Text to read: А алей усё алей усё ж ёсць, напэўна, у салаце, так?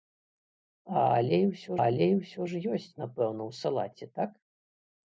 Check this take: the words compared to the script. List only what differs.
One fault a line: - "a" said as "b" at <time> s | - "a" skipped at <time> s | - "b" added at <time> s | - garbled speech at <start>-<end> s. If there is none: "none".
none